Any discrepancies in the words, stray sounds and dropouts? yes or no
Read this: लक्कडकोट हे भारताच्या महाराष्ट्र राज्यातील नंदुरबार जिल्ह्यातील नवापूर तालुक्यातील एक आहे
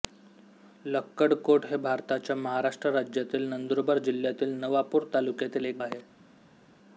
no